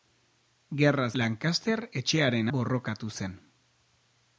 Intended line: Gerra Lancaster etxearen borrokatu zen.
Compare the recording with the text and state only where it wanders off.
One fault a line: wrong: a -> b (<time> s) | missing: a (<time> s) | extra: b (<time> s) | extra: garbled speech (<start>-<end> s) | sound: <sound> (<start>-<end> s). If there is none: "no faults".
no faults